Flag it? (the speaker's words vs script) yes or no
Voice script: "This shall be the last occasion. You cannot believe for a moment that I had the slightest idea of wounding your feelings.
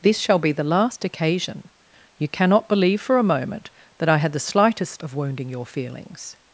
yes